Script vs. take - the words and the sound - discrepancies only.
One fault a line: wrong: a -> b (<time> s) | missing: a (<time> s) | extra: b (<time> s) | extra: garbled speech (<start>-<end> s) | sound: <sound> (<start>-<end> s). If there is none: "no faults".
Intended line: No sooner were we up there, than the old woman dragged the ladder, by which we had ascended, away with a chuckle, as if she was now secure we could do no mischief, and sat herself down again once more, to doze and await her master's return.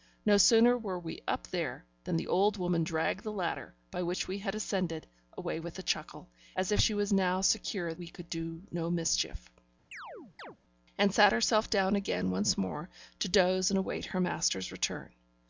sound: chirp (9.9-10.6 s)